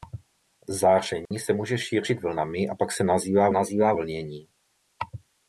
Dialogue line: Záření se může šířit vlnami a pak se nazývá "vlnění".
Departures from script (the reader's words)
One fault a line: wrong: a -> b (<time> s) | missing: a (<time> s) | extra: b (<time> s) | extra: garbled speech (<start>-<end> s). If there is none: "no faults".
extra: nazývá (3.5 s)